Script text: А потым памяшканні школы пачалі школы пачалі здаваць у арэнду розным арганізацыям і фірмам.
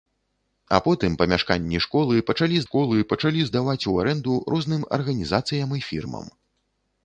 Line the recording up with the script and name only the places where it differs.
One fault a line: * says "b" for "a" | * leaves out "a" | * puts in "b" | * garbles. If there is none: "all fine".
all fine